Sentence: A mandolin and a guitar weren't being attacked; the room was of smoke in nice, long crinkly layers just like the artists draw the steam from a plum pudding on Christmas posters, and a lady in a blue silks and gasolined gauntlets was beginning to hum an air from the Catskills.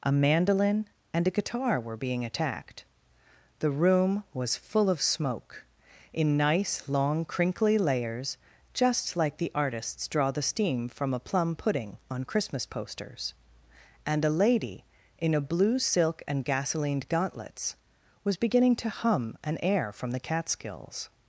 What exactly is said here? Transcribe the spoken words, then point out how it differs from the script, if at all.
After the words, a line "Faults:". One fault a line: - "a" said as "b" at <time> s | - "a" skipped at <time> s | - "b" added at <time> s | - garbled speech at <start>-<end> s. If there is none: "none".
A mandolin and a guitar were being attacked; the room was full of smoke in nice, long crinkly layers just like the artists draw the steam from a plum pudding on Christmas posters, and a lady in a blue silk and gasolined gauntlets was beginning to hum an air from the Catskills.
Faults:
- "weren't" said as "were" at 1.8 s
- "full" added at 4.6 s
- "silks" said as "silk" at 15.8 s